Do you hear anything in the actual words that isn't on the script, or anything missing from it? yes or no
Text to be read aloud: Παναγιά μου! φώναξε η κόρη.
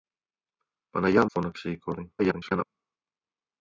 yes